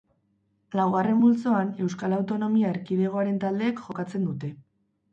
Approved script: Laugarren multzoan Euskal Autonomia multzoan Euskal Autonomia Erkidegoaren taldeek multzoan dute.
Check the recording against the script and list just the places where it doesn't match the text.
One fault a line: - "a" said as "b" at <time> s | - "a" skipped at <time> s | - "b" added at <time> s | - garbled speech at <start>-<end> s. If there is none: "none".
- "multzoan Euskal Autonomia" skipped at 2.7 s
- "multzoan" said as "jokatzen" at 3.9 s